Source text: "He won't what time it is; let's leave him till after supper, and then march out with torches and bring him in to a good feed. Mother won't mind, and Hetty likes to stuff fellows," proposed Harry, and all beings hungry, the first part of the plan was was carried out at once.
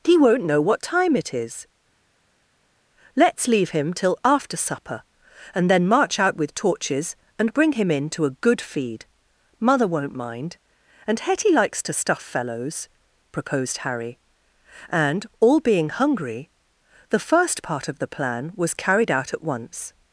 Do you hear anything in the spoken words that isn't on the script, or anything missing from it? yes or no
yes